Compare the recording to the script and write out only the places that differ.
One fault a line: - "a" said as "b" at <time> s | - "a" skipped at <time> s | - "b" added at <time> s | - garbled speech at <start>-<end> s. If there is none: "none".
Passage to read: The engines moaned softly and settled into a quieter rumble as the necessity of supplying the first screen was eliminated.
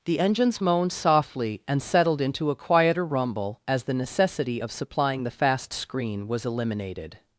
- "first" said as "fast" at 5.3 s